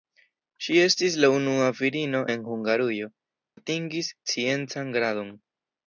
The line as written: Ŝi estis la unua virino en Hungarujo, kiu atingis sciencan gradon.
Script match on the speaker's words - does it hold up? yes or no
no